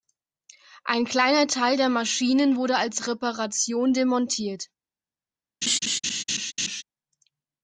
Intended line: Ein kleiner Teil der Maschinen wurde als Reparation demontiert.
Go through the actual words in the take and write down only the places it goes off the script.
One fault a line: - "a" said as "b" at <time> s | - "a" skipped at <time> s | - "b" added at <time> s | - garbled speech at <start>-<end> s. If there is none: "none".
none